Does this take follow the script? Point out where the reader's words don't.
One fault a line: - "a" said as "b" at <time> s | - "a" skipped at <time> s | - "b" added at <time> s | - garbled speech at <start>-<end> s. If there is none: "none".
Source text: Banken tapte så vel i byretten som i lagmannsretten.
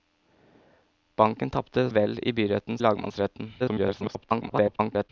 - "så" skipped at 1.9 s
- "som" skipped at 2.8 s
- garbled speech at 3.6-5.1 s